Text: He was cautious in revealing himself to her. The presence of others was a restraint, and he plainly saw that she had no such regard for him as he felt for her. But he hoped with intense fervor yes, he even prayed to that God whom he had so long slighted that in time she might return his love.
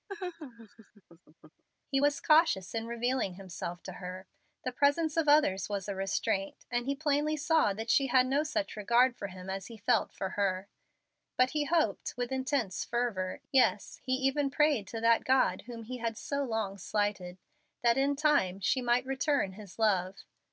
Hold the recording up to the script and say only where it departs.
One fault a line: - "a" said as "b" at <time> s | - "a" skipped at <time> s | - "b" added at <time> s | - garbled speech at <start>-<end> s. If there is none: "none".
none